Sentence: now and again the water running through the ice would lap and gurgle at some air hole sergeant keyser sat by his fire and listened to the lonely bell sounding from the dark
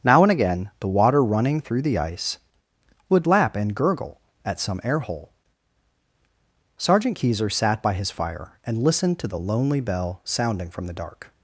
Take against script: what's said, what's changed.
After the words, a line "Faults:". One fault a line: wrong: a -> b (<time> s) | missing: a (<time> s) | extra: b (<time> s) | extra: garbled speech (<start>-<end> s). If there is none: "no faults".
now and again the water running through the ice would lap and gurgle at some air hole sergeant keyser sat by his fire and listened to the lonely bell sounding from the dark
Faults:
no faults